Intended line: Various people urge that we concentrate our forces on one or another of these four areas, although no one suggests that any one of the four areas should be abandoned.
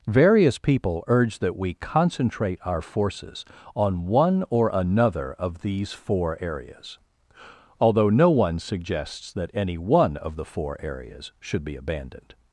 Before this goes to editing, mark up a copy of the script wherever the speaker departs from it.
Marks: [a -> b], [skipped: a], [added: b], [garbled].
Various people urge that we concentrate our forces on one or another of these four areas, although no one suggests that any one of the four areas should be abandoned.